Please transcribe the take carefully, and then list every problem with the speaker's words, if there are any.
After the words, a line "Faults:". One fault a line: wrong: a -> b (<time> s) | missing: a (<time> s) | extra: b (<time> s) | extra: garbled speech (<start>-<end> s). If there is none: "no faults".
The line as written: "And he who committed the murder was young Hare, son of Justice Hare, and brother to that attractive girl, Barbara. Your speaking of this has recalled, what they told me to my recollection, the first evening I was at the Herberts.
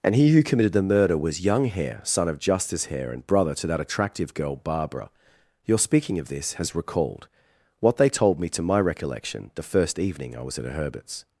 "And he who committed the murder was young Hare, son of Justice Hare, and brother to that attractive girl, Barbara. Your speaking of this has recalled, what they told me to my recollection, the first evening I was at a Herberts.
Faults:
wrong: the -> a (10.7 s)